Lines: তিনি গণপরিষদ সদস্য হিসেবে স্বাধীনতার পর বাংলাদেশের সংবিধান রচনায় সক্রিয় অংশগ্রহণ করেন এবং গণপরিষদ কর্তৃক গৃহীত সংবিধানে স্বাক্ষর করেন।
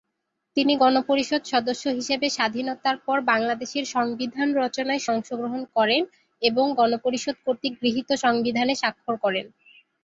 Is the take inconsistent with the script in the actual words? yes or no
yes